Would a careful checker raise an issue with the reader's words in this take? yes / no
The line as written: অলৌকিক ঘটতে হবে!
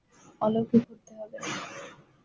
no